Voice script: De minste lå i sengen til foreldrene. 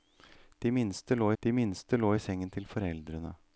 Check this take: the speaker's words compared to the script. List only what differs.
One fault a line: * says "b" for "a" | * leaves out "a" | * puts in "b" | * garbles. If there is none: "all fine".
* puts in "de minste lå"